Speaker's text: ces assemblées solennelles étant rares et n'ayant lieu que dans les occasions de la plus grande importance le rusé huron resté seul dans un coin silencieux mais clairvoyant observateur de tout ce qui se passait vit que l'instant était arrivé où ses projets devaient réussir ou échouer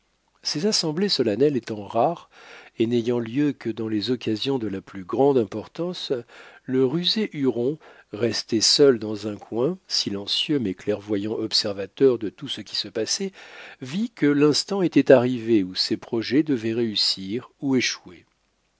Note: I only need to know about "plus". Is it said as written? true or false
true